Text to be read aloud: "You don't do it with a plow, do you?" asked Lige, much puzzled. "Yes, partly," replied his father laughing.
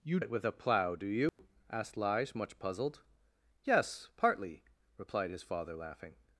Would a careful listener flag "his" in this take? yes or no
no